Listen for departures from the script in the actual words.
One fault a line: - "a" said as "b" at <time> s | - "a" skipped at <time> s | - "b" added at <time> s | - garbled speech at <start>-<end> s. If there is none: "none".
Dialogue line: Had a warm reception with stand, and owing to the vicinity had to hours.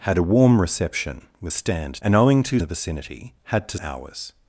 none